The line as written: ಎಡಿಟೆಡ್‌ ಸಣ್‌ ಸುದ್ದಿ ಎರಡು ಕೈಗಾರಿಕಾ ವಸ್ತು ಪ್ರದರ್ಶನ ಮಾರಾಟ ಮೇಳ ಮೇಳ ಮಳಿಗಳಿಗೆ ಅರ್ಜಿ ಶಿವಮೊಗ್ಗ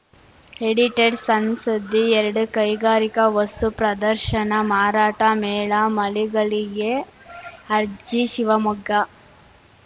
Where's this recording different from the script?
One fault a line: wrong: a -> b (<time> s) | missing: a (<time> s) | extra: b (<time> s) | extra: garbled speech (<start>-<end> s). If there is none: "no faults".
missing: ಮೇಳ (5.7 s)